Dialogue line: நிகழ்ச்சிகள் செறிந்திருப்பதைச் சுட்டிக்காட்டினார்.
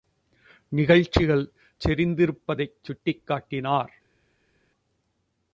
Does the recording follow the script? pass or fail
pass